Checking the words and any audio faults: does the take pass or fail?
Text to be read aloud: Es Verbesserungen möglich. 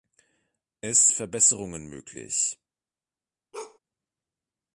fail